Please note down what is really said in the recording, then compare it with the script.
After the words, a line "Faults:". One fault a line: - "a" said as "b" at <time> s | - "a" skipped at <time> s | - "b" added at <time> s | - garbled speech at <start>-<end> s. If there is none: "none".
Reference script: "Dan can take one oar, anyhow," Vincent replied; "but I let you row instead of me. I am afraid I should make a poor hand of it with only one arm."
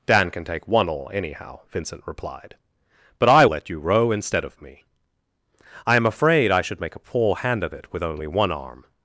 "Dan can take one oar, anyhow," Vincent replied; "but I let you row instead of me. I am afraid I should make a poor hand of it with only one arm."
Faults:
none